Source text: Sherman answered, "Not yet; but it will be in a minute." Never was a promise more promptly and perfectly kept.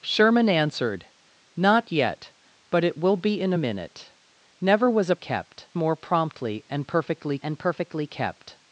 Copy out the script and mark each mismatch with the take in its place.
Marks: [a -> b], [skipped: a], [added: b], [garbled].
Sherman answered, "Not yet; but it will be in a minute." Never was a [promise -> kept] more promptly and perfectly [added: and perfectly] kept.